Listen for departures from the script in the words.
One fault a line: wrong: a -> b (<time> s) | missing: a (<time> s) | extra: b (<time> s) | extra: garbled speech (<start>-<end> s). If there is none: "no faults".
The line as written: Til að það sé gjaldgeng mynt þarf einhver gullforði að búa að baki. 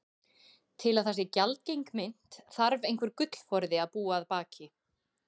no faults